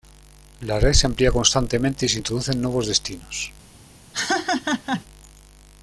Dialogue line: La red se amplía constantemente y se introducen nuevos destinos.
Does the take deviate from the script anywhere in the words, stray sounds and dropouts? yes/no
yes